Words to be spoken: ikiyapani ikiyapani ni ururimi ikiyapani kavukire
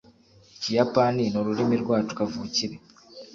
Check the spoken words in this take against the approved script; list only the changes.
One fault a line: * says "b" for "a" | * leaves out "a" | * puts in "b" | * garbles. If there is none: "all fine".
* leaves out "ikiyapani"
* says "rwacu" for "ikiyapani"